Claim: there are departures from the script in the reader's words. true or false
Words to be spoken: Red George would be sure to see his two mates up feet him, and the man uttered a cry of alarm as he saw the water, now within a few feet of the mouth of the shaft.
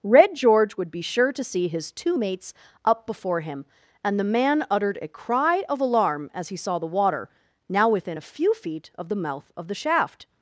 true